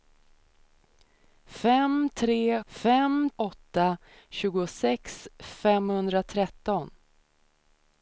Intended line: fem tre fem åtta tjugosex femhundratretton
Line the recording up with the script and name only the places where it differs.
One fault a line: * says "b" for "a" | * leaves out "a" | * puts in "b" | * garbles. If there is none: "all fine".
all fine